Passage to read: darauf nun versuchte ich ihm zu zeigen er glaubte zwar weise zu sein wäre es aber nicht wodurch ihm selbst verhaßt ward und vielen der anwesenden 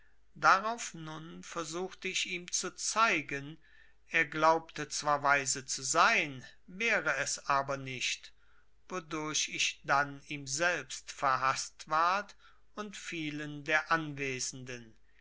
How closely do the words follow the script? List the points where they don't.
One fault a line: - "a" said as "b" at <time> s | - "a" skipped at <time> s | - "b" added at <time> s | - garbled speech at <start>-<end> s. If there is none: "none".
- "ich dann" added at 9.5 s